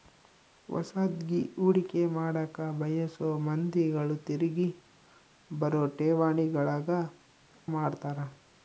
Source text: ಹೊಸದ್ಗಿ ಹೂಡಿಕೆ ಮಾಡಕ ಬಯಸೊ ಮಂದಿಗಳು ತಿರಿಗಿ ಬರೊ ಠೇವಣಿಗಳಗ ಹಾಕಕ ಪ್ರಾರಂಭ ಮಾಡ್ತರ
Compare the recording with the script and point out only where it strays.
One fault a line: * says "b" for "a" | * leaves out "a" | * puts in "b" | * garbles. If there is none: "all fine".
* leaves out "ಹಾಕಕ ಪ್ರಾರಂಭ"